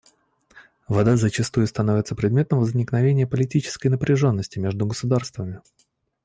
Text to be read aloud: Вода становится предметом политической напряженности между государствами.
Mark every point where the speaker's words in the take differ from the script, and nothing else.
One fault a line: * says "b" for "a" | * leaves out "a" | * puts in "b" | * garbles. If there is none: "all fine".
* puts in "зачастую"
* puts in "возникновения"